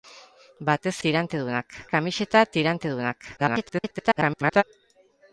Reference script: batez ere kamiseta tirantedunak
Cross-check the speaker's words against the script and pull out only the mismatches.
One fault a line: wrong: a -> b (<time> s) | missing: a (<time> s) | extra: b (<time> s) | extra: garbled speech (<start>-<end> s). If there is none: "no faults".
wrong: ere -> tirantedunak (1.1 s)
extra: garbled speech (3.4-4.6 s)